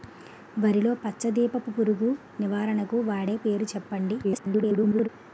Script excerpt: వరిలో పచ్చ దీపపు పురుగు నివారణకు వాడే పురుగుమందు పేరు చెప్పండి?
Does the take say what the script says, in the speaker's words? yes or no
no